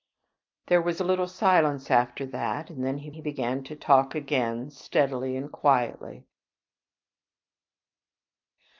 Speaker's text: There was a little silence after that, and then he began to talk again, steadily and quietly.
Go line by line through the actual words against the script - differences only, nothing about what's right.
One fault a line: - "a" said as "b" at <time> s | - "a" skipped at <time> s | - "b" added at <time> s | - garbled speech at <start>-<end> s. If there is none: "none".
- "he" added at 3.1 s